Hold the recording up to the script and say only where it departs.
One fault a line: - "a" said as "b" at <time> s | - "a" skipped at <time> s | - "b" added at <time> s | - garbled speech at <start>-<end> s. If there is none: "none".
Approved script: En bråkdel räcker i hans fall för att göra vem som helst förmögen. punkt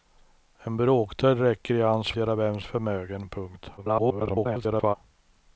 - "fall för att" skipped at 2.1 s
- "som helst" skipped at 2.6 s
- garbled speech at 3.8-5.0 s